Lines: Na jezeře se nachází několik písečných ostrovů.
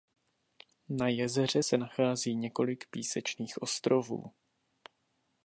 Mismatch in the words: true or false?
false